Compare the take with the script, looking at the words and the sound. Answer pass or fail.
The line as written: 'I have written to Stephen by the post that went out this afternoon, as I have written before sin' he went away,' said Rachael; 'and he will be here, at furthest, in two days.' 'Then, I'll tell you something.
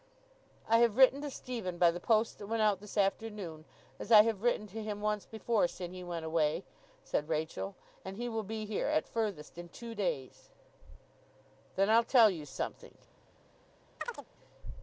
fail